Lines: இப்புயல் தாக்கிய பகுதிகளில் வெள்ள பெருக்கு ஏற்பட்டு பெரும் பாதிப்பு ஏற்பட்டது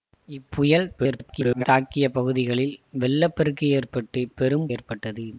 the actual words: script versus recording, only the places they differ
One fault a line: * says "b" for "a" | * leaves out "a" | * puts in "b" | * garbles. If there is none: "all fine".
* garbles
* leaves out "பாதிப்பு"